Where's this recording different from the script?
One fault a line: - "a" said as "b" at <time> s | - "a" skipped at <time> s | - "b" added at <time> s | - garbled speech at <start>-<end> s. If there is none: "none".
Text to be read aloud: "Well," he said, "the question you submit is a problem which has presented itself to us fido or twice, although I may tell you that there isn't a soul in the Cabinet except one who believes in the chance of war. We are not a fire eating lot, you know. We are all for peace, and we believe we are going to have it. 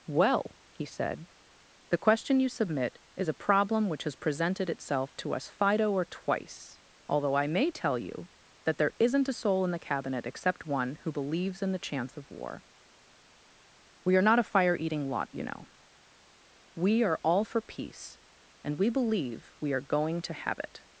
none